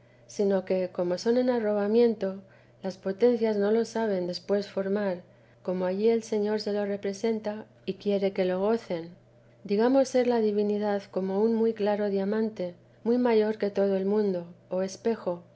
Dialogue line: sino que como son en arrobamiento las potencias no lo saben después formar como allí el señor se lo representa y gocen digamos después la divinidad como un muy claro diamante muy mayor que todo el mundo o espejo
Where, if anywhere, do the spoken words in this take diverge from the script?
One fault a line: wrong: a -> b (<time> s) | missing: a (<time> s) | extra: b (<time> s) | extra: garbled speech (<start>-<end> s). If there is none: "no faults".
extra: quiere que lo (7.9 s)
wrong: después -> ser (10.1 s)